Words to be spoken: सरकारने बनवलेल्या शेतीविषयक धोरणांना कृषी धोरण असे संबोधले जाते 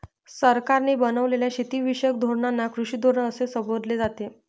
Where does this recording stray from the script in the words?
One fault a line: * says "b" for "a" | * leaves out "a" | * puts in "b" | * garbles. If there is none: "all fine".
all fine